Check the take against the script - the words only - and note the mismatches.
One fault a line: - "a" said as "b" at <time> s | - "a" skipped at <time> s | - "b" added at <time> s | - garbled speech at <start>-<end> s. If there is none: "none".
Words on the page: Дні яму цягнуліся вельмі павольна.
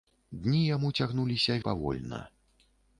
- "вельмі" skipped at 1.6 s